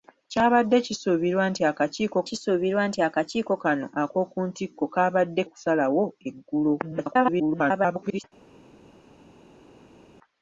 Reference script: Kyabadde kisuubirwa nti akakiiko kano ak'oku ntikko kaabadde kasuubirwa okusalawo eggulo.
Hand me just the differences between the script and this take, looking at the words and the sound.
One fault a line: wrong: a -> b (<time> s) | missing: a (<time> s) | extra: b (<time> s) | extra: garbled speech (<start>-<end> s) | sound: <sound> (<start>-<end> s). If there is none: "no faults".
extra: kisuubirwa nti akakiiko (2.3 s)
missing: kasuubirwa (5.4 s)
extra: garbled speech (6.8-8.2 s)